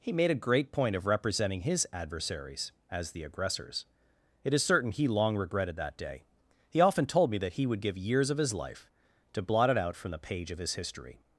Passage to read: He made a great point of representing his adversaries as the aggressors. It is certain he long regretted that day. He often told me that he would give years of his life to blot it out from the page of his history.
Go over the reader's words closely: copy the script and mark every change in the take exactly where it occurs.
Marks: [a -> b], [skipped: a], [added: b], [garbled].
He made a great point of representing his adversaries as the aggressors. It is certain he long regretted that day. He often told me that he would give years of his life to blot it out from the page of his history.